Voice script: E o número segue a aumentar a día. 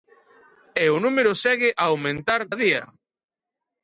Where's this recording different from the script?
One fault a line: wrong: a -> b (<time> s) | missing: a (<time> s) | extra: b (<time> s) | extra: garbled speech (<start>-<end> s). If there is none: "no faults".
no faults